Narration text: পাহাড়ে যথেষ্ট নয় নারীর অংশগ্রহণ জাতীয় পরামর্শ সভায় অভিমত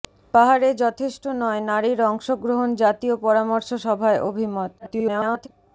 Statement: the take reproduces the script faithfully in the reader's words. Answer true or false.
false